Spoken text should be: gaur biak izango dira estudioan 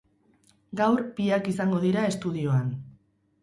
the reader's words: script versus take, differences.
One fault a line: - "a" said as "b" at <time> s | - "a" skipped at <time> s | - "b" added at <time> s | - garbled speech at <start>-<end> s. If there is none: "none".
none